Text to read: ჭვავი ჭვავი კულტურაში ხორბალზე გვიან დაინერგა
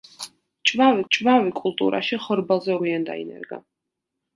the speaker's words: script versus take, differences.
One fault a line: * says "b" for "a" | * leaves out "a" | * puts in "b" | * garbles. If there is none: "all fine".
all fine